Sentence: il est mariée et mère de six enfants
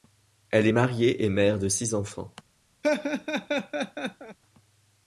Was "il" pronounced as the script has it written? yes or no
no